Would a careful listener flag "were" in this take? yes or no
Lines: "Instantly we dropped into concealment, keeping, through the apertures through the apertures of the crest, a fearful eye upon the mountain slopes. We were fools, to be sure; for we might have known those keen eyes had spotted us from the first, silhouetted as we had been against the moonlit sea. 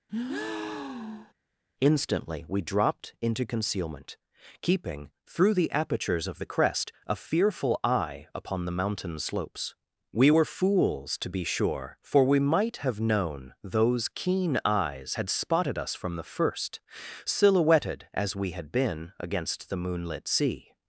no